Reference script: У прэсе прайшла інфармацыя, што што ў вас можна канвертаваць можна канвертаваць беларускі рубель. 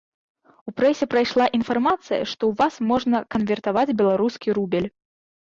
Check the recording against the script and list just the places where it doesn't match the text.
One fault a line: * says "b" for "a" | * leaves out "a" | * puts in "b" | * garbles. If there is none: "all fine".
* leaves out "што"
* leaves out "можна канвертаваць"